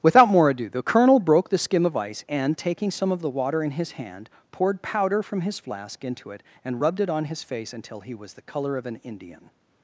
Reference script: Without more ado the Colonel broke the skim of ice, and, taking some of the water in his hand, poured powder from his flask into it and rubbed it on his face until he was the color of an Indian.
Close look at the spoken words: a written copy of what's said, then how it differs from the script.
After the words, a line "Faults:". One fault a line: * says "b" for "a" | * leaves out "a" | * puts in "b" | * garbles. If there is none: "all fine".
Without more ado the Colonel broke the skim of ice, and, taking some of the water in his hand, poured powder from his flask into it and rubbed it on his face until he was the color of an Indian.
Faults:
all fine